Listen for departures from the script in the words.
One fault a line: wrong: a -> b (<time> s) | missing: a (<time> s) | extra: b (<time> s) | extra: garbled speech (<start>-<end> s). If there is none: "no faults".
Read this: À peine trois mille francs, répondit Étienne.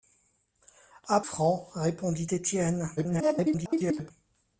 missing: peine trois mille (1.2 s)
extra: garbled speech (3.0-4.1 s)